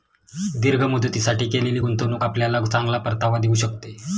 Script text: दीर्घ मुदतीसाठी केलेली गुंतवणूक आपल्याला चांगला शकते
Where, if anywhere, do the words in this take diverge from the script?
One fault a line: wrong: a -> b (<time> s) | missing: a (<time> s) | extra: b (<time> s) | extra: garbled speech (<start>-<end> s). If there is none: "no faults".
extra: परतावा देऊ (3.0 s)